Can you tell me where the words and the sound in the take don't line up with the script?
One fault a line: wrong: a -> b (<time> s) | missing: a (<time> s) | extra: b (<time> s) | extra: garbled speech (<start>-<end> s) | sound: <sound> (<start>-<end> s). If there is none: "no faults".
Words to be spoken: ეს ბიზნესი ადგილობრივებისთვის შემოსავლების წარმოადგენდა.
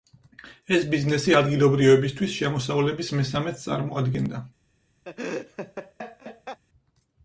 extra: მესამედს (3.2 s)
sound: laugh (5.0-6.6 s)